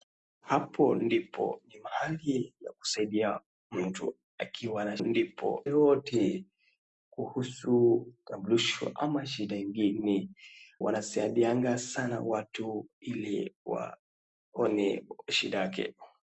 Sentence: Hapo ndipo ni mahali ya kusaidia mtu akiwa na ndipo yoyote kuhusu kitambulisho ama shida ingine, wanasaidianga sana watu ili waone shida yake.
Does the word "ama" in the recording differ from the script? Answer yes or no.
no